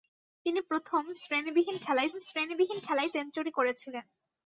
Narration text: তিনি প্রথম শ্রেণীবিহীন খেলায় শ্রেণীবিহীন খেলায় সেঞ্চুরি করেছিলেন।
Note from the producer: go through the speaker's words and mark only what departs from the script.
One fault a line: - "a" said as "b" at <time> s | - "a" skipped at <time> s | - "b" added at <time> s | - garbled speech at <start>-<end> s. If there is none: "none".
none